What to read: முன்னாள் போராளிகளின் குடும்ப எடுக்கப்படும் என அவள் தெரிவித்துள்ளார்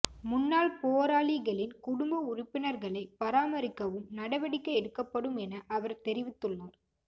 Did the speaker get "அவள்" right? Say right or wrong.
wrong